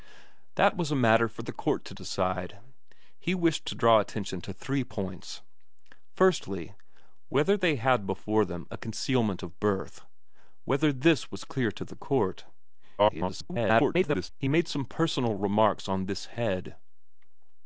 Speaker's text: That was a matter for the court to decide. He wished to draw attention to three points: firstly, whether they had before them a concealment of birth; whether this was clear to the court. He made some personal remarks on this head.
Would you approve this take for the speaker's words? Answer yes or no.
no